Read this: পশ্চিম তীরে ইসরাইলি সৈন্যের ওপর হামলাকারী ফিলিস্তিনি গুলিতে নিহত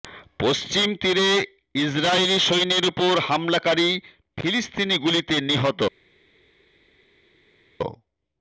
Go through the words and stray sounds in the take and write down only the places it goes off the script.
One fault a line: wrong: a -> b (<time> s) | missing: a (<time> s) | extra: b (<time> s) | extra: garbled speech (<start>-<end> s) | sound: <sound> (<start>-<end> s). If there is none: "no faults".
no faults